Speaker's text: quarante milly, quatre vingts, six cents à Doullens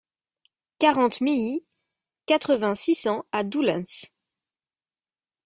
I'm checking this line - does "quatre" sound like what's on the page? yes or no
yes